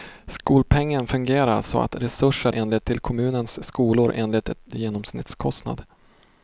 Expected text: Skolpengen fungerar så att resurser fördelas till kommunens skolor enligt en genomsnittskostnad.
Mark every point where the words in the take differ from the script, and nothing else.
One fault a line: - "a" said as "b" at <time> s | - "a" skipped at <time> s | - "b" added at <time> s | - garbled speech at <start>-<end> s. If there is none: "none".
- "fördelas" said as "enligt" at 2.5 s